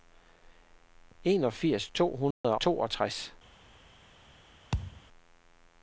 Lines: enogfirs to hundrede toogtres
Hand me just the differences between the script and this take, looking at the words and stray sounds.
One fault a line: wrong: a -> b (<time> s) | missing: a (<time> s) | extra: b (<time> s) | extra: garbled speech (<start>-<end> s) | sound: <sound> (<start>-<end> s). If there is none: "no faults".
sound: dropout (2.3-2.4 s)
sound: thud (4.7-5.0 s)